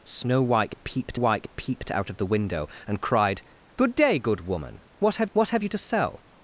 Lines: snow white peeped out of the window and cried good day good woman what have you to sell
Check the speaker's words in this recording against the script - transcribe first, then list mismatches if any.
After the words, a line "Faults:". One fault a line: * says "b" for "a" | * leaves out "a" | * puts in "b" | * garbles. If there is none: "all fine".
snow white peeped white peeped out of the window and cried good day good woman what have what have you to sell
Faults:
* puts in "white peeped"
* puts in "what have"